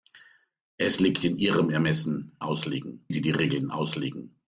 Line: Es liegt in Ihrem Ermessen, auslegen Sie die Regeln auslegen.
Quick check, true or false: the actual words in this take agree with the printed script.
true